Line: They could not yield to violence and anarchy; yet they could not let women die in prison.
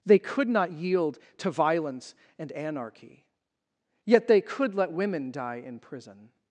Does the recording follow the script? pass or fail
fail